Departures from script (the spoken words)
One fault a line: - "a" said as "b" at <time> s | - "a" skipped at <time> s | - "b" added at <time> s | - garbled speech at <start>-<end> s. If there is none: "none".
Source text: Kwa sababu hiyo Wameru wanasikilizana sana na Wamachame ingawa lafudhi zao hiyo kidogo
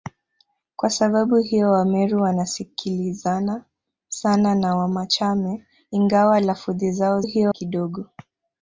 none